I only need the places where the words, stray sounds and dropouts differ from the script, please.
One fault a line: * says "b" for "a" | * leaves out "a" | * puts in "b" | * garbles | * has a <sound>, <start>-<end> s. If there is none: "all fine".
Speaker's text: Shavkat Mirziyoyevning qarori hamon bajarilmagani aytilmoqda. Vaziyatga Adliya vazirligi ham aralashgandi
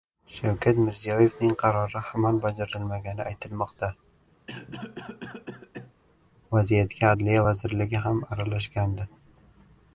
* has a cough, 4.5-5.9 s